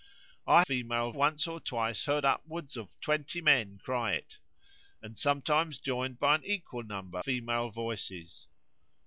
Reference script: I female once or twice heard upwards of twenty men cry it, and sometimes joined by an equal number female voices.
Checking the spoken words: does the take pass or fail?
pass